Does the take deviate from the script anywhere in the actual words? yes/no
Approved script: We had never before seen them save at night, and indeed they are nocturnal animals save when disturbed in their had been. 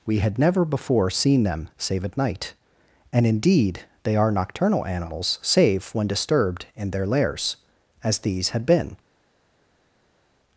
yes